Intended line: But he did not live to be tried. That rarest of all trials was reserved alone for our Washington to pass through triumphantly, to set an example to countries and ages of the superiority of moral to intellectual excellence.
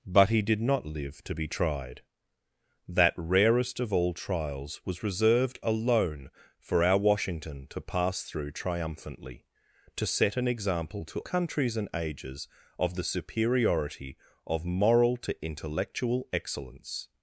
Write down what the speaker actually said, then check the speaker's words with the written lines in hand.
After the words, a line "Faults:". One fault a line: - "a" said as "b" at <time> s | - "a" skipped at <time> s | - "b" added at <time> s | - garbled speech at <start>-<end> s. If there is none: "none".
But he did not live to be tried. That rarest of all trials was reserved alone for our Washington to pass through triumphantly, to set an example to countries and ages of the superiority of moral to intellectual excellence.
Faults:
none